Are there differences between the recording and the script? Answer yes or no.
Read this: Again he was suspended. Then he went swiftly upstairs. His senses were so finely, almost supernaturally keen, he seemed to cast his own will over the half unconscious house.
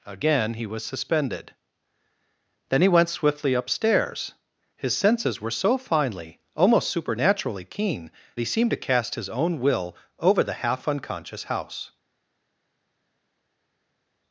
no